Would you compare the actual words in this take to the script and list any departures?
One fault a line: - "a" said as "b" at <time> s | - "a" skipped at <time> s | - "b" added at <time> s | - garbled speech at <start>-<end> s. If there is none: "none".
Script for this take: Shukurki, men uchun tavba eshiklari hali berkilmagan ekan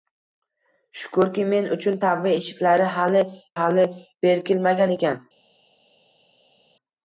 - "hali" added at 3.6 s